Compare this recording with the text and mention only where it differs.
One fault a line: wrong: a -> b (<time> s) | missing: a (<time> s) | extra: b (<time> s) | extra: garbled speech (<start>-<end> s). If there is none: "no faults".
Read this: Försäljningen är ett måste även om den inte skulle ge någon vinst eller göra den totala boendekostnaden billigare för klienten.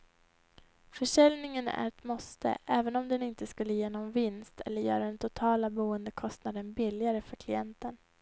no faults